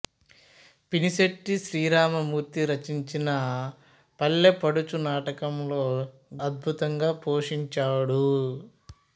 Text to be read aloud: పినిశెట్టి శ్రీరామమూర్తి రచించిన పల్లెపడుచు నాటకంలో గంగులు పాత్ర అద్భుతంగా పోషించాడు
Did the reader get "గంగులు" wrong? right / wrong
wrong